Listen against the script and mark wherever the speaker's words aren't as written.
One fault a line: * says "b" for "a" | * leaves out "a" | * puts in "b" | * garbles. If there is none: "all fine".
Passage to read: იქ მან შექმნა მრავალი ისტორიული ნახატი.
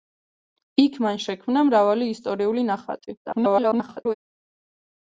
* garbles